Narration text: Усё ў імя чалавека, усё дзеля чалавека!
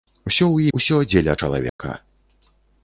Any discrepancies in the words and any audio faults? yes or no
yes